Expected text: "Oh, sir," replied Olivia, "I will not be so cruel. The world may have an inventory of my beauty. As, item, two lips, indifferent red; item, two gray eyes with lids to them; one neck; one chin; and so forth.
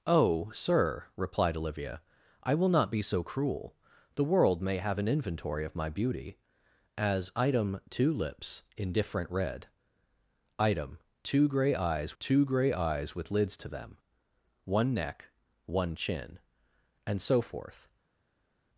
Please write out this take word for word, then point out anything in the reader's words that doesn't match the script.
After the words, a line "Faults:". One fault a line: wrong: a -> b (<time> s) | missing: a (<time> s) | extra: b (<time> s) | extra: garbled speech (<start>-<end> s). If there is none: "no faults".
"Oh, sir," replied Olivia, "I will not be so cruel. The world may have an inventory of my beauty. As, item, two lips, indifferent red; item, two gray eyes two gray eyes with lids to them; one neck; one chin; and so forth.
Faults:
extra: two gray eyes (12.2 s)